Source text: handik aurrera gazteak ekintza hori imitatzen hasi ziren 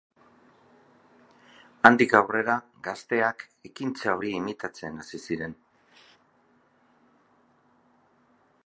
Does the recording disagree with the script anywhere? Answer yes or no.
no